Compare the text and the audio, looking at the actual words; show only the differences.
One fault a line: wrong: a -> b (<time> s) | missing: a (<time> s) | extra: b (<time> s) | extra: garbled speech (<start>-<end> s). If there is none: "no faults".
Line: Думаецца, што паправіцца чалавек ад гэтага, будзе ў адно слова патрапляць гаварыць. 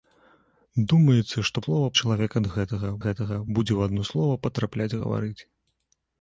wrong: паправіцца -> слова (1.6 s)
extra: гэтага (3.0 s)